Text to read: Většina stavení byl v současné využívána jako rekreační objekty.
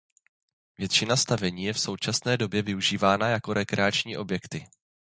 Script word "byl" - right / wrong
wrong